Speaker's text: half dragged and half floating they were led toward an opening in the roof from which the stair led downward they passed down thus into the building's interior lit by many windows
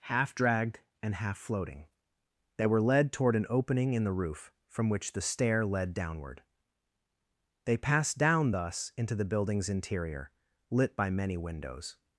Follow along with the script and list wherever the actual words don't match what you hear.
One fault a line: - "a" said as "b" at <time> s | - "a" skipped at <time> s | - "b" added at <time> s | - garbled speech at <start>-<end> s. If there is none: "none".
none